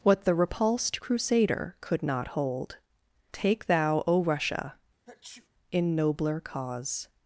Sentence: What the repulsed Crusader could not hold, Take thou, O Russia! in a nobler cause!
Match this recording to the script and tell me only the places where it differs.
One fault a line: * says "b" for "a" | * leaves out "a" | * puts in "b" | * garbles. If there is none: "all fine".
* leaves out "a"